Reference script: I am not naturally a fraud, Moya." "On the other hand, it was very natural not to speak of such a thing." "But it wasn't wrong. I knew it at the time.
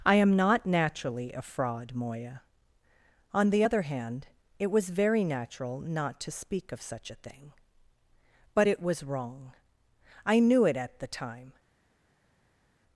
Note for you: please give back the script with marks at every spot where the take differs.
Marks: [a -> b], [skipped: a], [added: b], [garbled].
I am not naturally a fraud, Moya." "On the other hand, it was very natural not to speak of such a thing." "But it [wasn't -> was] wrong. I knew it at the time.